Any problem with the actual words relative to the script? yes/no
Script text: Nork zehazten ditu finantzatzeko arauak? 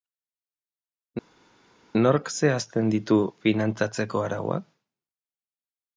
no